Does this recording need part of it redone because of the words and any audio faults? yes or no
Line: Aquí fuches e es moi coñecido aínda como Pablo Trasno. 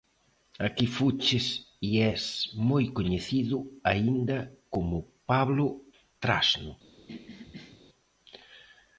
yes